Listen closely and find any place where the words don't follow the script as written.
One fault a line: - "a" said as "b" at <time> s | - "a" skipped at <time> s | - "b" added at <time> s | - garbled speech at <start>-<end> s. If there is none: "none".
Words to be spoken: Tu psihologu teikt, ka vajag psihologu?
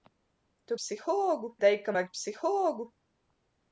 none